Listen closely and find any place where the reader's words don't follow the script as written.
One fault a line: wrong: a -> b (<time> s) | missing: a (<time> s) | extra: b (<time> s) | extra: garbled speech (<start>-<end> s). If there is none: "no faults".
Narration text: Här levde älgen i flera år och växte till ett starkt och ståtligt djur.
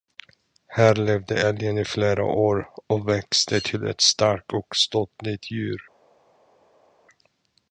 no faults